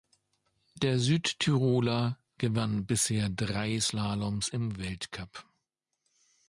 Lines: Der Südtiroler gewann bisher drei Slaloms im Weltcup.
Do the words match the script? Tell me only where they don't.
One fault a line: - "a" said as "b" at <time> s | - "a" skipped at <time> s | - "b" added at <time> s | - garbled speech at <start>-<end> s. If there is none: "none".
none